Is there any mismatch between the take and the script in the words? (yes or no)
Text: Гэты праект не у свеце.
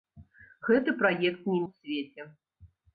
no